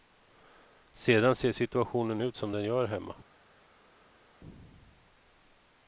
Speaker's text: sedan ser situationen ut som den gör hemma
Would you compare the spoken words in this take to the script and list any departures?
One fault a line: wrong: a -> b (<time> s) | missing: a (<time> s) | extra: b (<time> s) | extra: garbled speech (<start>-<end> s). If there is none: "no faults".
no faults